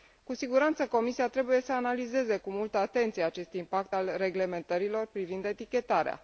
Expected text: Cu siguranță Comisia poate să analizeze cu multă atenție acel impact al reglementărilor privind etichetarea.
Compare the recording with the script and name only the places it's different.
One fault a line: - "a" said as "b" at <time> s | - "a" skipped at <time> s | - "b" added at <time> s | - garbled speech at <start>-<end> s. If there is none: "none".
- "poate" said as "trebuie" at 1.3 s
- "acel" said as "acest" at 3.2 s